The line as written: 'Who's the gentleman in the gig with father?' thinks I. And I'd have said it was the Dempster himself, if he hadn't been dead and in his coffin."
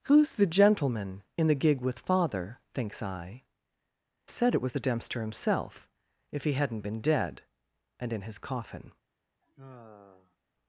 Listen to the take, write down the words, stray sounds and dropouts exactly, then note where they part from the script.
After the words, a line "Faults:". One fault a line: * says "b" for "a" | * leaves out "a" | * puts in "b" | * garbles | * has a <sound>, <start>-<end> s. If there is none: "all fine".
'Who's the gentleman in the gig with father?' thinks I. Said it was the Dempster himself, if he hadn't been dead and in his coffin."
Faults:
* leaves out "And I'd have"
* has a sigh, 9.4-10.4 s